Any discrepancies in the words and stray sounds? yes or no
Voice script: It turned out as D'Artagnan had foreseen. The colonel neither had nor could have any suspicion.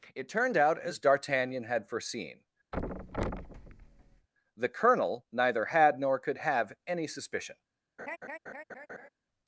yes